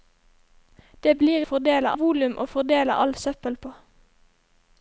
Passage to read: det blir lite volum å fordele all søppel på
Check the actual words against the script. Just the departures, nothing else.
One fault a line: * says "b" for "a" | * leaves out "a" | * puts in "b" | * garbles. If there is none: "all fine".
* says "fordele" for "lite"